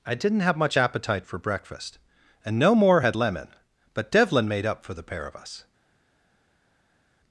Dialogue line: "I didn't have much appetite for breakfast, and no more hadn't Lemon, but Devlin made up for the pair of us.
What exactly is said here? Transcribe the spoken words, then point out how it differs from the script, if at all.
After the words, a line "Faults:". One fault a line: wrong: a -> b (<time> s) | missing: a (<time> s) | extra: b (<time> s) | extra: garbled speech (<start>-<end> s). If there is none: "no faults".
"I didn't have much appetite for breakfast, and no more had Lemon, but Devlin made up for the pair of us.
Faults:
wrong: hadn't -> had (3.0 s)